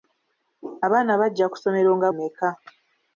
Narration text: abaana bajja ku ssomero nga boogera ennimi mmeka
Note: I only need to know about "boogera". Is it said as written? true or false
false